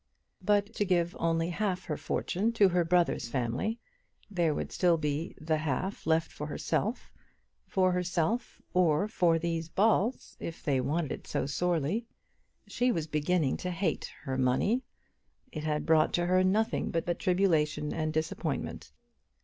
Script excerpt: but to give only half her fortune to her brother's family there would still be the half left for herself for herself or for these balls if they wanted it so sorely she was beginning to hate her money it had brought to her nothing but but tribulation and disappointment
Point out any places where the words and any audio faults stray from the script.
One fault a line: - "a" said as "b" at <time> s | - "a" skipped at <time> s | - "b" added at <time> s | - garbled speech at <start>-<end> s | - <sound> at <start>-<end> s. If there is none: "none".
none